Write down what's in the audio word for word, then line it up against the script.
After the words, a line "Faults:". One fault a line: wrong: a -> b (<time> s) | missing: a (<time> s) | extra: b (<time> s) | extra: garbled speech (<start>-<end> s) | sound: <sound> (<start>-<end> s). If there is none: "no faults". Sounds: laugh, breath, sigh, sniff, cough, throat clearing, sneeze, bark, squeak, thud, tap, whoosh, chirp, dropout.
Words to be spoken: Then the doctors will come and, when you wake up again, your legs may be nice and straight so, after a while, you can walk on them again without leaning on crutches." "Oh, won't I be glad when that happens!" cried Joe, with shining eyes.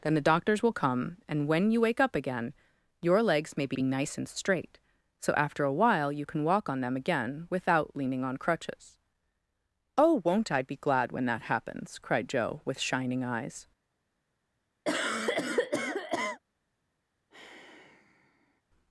Then the doctors will come and, when you wake up again, your legs may be be nice and straight so, after a while, you can walk on them again without leaning on crutches." "Oh, won't I be glad when that happens!" cried Joe, with shining eyes.
Faults:
extra: be (3.7 s)
sound: cough (14.8-16.4 s)
sound: sigh (17.3-18.6 s)